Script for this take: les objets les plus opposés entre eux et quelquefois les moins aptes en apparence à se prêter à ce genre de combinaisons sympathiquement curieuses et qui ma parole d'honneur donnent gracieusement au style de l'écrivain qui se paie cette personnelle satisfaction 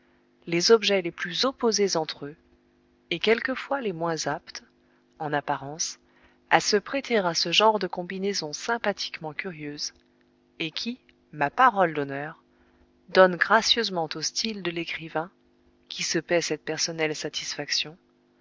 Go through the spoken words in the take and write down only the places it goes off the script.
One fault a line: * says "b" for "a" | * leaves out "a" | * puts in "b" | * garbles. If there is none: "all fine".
all fine